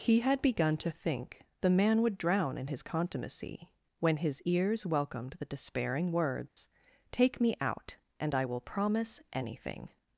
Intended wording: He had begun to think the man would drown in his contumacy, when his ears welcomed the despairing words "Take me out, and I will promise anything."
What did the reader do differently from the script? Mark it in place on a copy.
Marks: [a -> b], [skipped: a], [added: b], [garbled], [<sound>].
He had begun to think the man would drown in his contumacy, when his ears welcomed the despairing words [dropout] "Take me out, and I will promise anything."